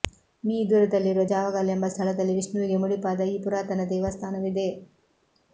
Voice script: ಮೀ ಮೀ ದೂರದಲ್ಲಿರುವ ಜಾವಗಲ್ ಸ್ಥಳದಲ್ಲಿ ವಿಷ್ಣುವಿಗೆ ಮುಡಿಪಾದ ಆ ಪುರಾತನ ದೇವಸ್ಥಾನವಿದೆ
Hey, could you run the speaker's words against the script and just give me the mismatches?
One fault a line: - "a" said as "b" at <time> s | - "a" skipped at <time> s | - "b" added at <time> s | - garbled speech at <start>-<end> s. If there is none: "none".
- "ಮೀ" skipped at 0.6 s
- "ಎಂಬ" added at 1.7 s
- "ಆ" said as "ಈ" at 3.3 s